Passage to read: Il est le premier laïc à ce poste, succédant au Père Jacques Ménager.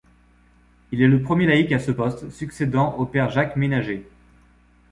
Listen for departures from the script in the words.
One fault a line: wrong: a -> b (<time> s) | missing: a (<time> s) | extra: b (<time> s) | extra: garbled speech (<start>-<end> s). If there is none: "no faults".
no faults